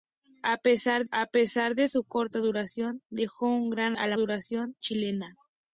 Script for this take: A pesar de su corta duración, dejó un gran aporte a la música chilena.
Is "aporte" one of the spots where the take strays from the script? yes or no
yes